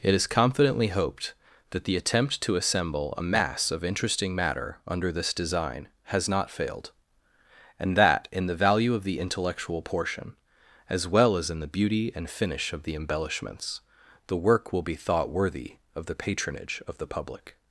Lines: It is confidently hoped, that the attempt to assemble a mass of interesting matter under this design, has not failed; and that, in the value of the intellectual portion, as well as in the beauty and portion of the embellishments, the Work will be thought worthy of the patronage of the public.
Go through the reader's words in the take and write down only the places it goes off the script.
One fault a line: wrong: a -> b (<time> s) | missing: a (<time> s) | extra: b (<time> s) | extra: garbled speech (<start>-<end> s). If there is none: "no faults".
wrong: portion -> finish (12.3 s)